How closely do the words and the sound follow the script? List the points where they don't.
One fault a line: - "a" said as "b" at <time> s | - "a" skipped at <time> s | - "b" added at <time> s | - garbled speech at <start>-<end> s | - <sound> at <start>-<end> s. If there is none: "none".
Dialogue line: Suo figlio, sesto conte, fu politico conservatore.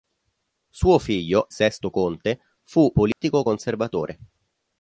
- dropout at 3.1-3.2 s